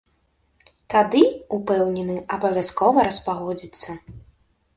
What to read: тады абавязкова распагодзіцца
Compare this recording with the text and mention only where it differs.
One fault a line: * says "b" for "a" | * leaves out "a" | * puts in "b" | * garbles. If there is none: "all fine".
* puts in "упэўнены"